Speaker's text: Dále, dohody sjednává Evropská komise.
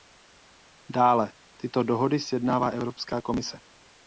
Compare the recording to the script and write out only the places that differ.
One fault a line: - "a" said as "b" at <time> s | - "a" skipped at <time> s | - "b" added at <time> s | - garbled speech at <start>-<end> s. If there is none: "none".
- "tyto" added at 1.6 s